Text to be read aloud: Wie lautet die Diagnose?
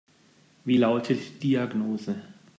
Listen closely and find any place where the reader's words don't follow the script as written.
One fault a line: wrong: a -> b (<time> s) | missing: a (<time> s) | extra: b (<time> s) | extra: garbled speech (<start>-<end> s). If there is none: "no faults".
missing: die (1.2 s)